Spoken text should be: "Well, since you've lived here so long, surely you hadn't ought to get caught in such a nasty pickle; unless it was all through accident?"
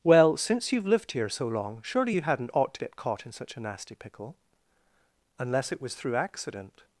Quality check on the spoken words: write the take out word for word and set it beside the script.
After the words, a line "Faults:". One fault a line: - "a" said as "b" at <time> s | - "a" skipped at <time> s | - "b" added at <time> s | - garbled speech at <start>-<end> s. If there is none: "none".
"Well, since you've lived here so long, surely you hadn't ought to get caught in such a nasty pickle; unless it was through accident?"
Faults:
- "all" skipped at 5.9 s